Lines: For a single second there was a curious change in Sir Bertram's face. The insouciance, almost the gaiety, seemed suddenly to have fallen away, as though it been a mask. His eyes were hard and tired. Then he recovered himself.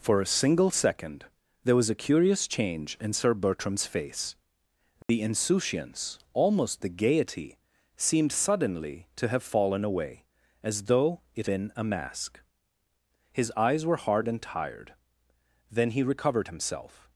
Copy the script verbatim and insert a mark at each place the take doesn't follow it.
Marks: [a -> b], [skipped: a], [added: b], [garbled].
For a single second there was a curious change in Sir Bertram's face. The insouciance, almost the gaiety, seemed suddenly to have fallen away, as though it been a mask. His eyes were hard and tired. Then he recovered himself.